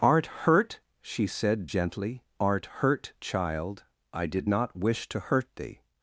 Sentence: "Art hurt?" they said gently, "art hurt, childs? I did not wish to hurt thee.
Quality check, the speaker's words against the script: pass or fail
fail